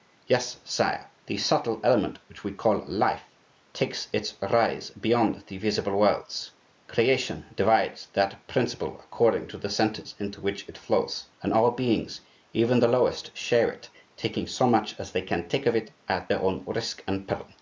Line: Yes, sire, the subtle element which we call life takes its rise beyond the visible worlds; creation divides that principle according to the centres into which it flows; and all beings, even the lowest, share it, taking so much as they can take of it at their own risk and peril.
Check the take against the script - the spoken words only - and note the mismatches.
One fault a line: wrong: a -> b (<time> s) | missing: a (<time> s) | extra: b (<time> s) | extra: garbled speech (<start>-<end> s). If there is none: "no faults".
no faults